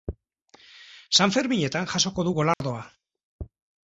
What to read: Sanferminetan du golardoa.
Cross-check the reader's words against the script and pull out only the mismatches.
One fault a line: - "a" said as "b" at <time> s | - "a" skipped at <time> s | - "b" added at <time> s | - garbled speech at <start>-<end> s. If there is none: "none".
- "jasoko" added at 1.9 s